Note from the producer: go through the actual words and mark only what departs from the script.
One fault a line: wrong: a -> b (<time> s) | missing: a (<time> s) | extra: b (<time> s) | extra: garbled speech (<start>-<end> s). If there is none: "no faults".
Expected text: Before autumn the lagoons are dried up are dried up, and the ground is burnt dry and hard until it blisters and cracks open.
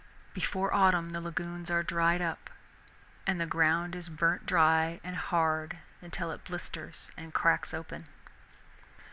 missing: are dried up (2.5 s)